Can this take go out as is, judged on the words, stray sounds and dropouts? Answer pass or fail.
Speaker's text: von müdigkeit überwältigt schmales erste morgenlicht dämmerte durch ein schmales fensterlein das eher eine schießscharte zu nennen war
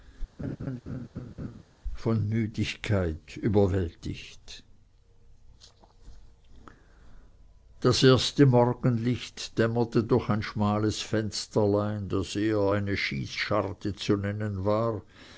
fail